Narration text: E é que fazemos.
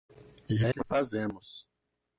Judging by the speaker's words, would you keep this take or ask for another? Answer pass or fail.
pass